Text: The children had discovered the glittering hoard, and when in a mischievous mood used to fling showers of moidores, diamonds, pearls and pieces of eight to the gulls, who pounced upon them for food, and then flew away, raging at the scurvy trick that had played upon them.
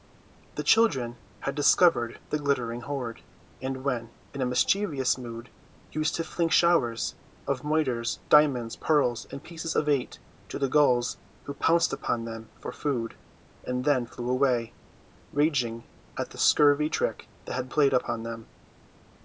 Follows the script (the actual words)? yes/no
yes